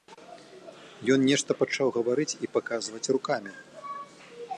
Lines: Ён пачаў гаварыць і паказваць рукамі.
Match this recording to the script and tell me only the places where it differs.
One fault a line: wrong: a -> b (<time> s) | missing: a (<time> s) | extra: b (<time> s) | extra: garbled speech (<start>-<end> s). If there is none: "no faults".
extra: нешта (1.3 s)